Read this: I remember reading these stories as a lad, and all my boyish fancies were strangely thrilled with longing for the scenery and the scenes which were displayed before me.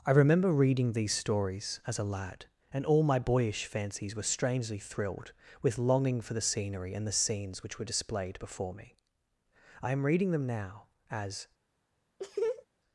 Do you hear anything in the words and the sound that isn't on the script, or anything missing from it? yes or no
yes